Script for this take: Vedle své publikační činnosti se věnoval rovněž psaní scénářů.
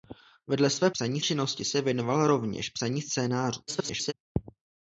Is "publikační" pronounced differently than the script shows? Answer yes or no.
yes